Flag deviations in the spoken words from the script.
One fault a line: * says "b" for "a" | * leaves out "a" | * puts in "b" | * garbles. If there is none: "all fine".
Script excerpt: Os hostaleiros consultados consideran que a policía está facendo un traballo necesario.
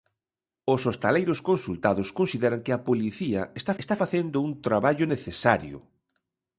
* puts in "está"